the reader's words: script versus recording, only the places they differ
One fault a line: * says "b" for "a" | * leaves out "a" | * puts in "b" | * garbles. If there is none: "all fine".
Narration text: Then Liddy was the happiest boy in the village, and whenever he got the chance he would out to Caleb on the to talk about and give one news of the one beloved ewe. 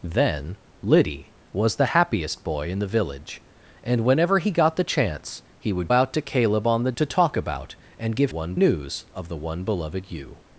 all fine